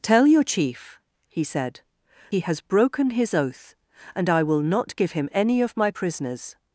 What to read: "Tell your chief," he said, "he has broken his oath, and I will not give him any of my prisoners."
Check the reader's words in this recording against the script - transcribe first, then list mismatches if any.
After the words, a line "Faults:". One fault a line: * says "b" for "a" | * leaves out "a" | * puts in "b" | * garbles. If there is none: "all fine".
"Tell your chief," he said, "he has broken his oath, and I will not give him any of my prisoners."
Faults:
all fine